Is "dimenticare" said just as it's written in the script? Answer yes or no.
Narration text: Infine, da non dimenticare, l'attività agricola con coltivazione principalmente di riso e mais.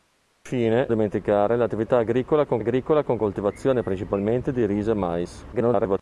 no